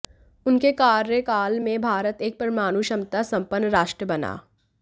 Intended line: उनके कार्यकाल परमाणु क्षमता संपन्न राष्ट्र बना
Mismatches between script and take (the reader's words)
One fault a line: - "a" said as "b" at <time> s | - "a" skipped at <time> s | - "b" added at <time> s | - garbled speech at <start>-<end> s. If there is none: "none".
- "में भारत एक" added at 1.6 s